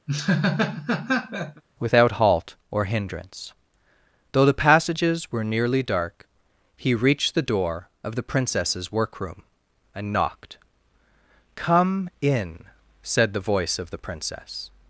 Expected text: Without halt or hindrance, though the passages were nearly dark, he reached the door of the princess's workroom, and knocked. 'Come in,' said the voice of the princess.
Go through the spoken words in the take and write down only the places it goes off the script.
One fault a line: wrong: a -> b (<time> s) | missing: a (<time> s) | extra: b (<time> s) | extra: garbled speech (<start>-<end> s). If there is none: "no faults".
no faults